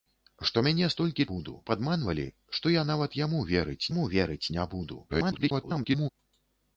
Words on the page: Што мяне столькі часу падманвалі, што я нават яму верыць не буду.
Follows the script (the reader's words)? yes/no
no